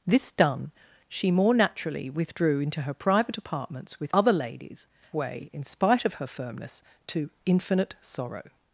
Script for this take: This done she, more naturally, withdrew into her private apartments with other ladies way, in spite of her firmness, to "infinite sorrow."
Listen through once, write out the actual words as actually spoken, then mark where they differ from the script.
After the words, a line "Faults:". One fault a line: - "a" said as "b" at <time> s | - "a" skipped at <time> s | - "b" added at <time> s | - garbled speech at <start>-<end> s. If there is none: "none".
This done she, more naturally, withdrew into her private apartments with other ladies way, in spite of her firmness, to "infinite sorrow."
Faults:
none